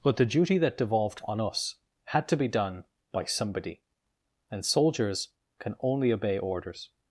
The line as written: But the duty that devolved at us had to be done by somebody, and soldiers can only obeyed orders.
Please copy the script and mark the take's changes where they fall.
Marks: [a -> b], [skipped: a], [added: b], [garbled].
But the duty that devolved [at -> on] us had to be done by somebody, and soldiers can only [obeyed -> obey] orders.